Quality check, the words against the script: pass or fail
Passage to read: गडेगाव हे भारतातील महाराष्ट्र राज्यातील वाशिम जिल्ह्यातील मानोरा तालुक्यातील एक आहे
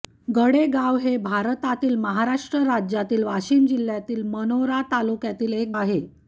pass